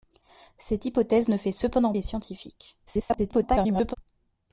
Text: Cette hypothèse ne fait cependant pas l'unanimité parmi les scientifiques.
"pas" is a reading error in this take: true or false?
true